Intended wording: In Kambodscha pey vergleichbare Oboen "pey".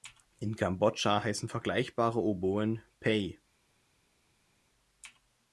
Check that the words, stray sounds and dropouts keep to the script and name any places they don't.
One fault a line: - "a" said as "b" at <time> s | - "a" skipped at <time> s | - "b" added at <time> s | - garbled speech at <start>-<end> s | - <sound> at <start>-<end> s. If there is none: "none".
- "pey" said as "heißen" at 1.2 s